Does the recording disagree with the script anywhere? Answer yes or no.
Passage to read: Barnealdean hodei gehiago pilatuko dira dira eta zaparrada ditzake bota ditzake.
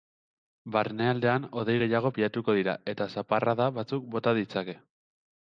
yes